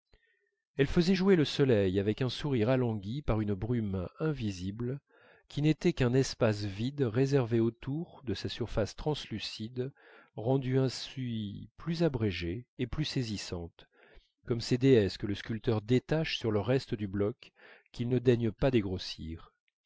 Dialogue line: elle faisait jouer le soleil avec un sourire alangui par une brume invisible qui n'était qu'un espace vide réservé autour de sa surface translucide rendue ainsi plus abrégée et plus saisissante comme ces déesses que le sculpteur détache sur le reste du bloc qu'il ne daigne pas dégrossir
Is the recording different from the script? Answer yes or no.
no